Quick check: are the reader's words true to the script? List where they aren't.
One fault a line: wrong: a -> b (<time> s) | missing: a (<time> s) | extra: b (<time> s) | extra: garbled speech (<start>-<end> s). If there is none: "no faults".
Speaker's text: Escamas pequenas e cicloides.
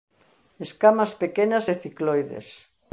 no faults